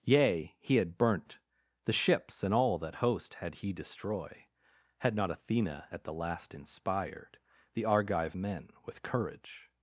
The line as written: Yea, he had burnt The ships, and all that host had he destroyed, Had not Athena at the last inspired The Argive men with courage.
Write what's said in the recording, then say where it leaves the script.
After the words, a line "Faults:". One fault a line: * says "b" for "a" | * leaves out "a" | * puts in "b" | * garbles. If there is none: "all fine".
Yea, he had burnt The ships, and all that host had he destroy, Had not Athena at the last inspired The Argive men with courage.
Faults:
* says "destroy" for "destroyed"